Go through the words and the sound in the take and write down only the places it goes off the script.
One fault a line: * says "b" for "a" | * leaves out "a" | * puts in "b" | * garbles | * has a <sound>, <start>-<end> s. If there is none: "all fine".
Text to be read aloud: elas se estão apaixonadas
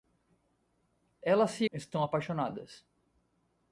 all fine